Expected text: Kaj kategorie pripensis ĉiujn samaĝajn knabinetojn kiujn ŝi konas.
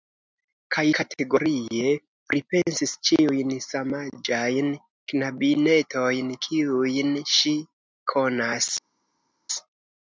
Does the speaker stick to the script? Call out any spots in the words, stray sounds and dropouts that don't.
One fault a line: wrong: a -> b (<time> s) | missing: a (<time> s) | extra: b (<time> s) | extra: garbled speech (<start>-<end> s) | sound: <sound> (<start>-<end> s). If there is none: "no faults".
no faults